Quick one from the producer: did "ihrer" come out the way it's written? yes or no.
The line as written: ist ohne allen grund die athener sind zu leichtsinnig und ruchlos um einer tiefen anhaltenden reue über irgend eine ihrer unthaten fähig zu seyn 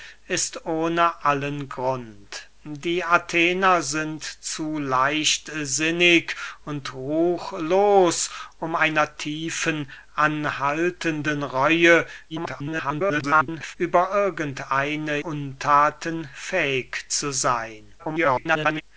no